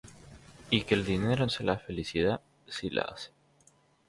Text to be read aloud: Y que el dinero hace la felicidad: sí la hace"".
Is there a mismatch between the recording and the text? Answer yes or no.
no